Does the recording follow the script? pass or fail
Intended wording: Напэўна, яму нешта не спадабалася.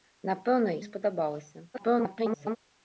fail